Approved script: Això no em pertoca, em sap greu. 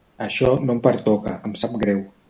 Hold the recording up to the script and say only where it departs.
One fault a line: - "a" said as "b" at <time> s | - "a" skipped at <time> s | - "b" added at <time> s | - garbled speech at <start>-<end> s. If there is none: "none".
none